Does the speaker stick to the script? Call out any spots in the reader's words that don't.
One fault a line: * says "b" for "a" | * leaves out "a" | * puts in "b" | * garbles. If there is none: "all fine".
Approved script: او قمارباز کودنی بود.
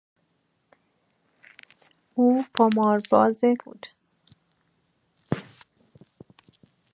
* leaves out "کودنی"